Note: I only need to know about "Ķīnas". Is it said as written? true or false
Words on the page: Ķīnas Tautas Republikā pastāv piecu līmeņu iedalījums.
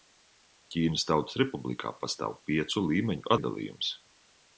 true